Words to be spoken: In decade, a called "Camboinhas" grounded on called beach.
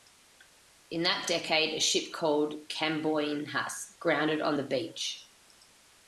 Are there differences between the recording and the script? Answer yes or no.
yes